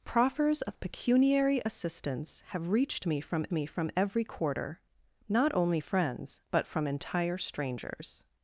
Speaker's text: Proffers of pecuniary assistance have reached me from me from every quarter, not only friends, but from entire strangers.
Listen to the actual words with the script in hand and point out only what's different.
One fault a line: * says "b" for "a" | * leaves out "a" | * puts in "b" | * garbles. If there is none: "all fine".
all fine